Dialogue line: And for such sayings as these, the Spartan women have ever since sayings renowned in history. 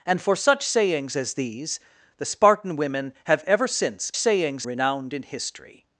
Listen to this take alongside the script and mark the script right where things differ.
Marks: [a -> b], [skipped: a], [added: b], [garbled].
And for such sayings as these, the Spartan women have ever since sayings renowned in history.